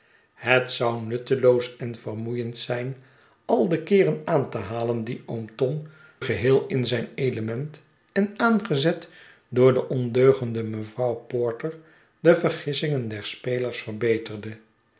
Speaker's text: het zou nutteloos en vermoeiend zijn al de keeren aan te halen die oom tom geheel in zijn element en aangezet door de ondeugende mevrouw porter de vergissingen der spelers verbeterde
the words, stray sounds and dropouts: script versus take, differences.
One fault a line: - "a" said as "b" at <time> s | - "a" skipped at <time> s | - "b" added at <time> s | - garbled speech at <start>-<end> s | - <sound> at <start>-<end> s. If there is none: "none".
none